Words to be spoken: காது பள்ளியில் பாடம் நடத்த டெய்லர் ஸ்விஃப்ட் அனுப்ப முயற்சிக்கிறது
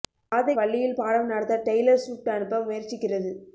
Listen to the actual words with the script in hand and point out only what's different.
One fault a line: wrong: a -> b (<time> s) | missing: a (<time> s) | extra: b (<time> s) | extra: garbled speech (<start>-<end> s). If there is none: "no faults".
no faults